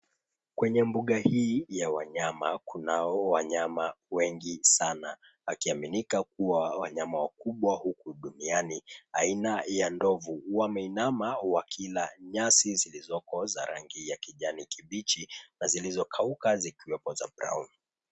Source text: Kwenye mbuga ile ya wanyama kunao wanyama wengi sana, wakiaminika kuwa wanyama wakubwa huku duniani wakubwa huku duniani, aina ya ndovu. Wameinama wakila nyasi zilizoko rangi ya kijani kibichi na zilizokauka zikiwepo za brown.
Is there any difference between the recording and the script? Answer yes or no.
yes